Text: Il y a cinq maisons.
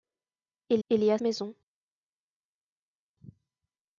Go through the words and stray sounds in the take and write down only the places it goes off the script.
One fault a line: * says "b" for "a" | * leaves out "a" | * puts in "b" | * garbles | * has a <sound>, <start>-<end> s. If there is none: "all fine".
* puts in "il"
* leaves out "cinq"